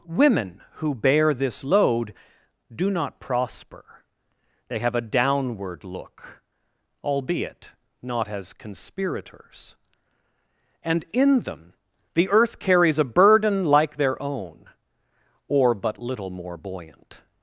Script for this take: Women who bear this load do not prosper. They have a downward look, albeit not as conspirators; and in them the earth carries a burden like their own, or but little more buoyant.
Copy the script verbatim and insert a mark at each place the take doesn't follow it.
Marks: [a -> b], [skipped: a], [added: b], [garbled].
Women who bear this load do not prosper. They have a downward look, albeit not as conspirators; and in them the earth carries a burden like their own, or but little more buoyant.